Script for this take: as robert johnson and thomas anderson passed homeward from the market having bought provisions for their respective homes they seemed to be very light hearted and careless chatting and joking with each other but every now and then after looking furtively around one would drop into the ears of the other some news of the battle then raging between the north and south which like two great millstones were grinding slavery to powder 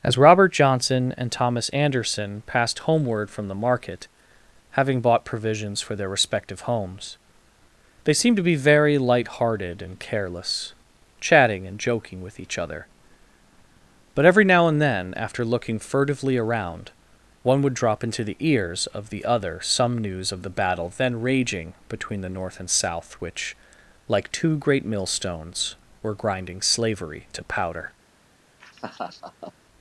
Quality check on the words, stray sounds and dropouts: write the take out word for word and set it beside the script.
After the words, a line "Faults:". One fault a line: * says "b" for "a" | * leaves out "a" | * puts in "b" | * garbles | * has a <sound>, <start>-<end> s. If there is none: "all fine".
as robert johnson and thomas anderson passed homeward from the market having bought provisions for their respective homes they seemed to be very light hearted and careless chatting and joking with each other but every now and then after looking furtively around one would drop into the ears of the other some news of the battle then raging between the north and south which like two great millstones were grinding slavery to powder
Faults:
* has a laugh, 28.6-29.5 s